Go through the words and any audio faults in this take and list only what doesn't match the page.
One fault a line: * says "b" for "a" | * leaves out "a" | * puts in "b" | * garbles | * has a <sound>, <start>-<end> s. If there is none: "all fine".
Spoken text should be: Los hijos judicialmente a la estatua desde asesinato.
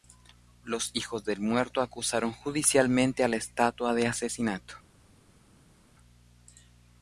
* puts in "del muerto acusaron"
* says "de" for "desde"